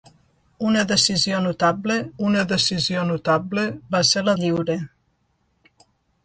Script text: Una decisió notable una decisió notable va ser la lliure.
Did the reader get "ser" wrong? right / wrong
right